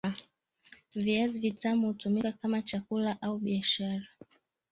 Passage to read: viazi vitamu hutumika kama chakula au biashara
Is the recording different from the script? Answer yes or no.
no